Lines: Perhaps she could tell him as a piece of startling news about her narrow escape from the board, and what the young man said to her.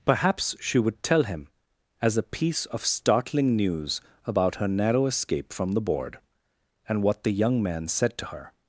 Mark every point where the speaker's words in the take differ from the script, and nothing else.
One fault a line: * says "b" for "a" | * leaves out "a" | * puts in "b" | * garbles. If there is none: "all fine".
* says "would" for "could"